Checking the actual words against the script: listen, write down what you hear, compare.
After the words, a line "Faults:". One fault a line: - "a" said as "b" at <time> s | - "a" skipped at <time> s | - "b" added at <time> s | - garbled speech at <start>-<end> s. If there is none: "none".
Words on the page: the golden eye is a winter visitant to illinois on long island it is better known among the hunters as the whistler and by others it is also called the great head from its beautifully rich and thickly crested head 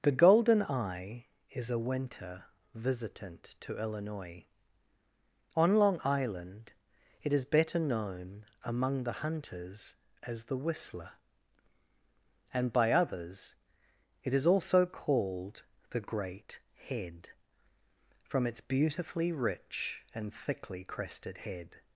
the golden eye is a winter visitant to illinois on long island it is better known among the hunters as the whistler and by others it is also called the great head from its beautifully rich and thickly crested head
Faults:
none